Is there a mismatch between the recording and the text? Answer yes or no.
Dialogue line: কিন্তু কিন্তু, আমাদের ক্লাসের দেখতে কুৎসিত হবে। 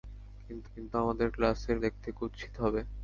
no